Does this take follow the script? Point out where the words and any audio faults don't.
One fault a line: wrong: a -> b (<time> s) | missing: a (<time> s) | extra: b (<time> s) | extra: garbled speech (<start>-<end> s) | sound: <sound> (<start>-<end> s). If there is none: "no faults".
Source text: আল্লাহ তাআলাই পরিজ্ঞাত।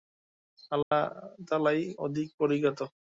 sound: dropout (0.8-0.9 s)
extra: অধিক (2.0 s)